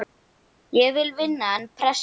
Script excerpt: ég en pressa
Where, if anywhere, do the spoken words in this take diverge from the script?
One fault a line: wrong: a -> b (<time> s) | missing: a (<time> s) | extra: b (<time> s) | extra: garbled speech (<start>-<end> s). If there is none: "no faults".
extra: vil vinna (0.9 s)